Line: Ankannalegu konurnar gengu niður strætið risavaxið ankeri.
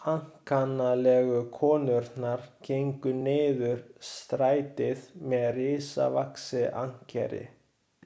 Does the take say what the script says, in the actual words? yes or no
no